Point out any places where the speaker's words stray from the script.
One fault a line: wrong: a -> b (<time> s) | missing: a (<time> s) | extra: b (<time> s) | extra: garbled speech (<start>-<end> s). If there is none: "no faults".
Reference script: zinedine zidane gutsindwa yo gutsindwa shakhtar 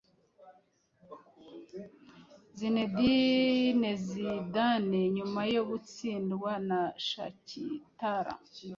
wrong: gutsindwa -> nyuma (5.1 s)
extra: na (6.7 s)